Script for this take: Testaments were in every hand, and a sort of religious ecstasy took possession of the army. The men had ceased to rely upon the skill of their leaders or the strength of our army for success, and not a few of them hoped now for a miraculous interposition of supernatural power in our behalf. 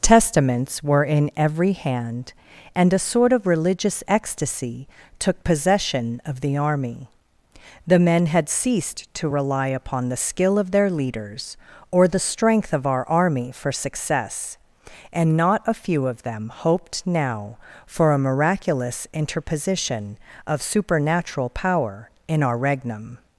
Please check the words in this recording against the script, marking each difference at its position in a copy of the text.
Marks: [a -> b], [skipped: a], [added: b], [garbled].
Testaments were in every hand, and a sort of religious ecstasy took possession of the army. The men had ceased to rely upon the skill of their leaders or the strength of our army for success, and not a few of them hoped now for a miraculous interposition of supernatural power in our [behalf. -> regnum]